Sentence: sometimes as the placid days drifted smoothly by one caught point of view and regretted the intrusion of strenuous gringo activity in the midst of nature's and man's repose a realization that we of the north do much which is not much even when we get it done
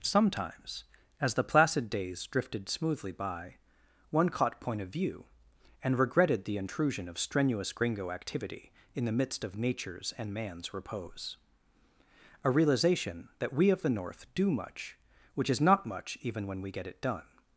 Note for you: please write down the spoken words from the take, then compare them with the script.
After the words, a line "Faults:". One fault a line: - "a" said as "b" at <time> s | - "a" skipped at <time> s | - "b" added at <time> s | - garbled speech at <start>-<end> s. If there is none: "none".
sometimes as the placid days drifted smoothly by one caught point of view and regretted the intrusion of strenuous gringo activity in the midst of nature's and man's repose a realization that we of the north do much which is not much even when we get it done
Faults:
none